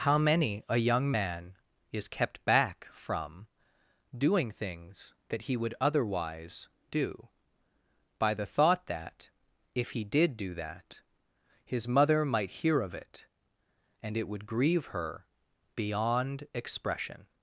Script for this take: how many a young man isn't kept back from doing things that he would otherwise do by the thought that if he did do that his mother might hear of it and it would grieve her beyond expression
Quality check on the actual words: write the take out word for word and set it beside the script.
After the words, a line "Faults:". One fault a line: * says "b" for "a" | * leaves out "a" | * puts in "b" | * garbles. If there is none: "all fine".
how many a young man is kept back from doing things that he would otherwise do by the thought that if he did do that his mother might hear of it and it would grieve her beyond expression
Faults:
* says "is" for "isn't"